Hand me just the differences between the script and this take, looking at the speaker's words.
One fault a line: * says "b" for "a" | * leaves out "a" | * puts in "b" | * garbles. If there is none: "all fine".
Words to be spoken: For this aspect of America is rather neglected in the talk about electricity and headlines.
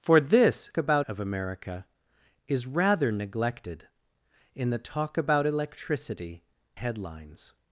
* says "about" for "aspect"
* leaves out "and"